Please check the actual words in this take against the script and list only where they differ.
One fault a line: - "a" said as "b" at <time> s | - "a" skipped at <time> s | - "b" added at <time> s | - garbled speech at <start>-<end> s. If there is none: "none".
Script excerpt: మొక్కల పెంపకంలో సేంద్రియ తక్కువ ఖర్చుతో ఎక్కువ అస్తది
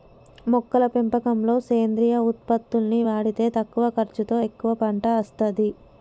- "ఉత్పత్తుల్ని వాడితే" added at 2.3 s
- "పంట" added at 4.8 s